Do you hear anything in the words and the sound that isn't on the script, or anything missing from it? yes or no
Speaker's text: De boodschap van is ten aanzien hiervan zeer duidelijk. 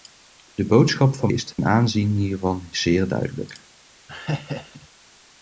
yes